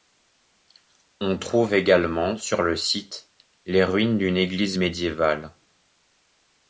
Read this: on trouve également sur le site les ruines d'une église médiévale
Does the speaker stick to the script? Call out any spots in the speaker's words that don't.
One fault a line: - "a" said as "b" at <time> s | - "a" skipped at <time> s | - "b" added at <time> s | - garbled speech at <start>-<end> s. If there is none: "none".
none